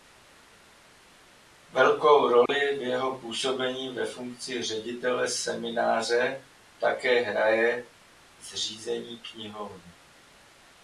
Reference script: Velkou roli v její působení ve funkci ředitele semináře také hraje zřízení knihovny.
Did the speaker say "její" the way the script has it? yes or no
no